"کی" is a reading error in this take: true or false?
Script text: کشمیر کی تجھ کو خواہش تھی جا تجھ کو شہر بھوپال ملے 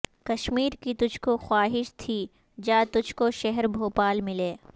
false